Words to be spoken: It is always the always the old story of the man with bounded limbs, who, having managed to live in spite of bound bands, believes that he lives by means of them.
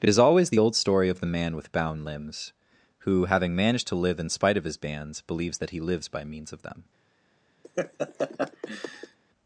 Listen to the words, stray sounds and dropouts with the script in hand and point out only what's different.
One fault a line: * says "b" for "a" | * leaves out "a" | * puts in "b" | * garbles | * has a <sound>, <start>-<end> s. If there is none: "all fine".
* leaves out "always the"
* says "bound" for "bounded"
* says "his" for "bound"
* has a laugh, 7.6-9.2 s